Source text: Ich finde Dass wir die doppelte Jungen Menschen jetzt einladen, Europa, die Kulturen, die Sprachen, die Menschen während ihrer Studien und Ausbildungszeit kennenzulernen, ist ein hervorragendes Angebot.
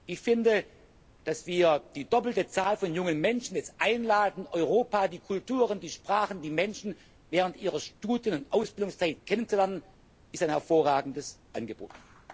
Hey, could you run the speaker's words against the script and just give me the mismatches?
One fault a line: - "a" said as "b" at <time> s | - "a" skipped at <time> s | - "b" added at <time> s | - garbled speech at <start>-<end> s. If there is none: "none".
- "Zahl von" added at 2.5 s